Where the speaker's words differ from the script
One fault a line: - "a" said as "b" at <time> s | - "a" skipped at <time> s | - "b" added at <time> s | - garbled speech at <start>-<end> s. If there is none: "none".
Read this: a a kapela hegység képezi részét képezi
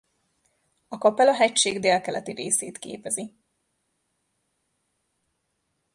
- "a" skipped at 1.0 s
- "képezi" said as "délkeleti" at 1.8 s